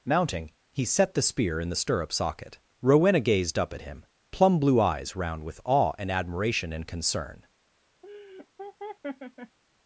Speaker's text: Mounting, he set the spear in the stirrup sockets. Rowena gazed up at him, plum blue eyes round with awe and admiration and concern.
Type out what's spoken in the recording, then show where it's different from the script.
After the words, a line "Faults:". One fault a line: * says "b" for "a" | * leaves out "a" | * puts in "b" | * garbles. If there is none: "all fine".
Mounting, he set the spear in the stirrup socket. Rowena gazed up at him, plum blue eyes round with awe and admiration and concern.
Faults:
* says "socket" for "sockets"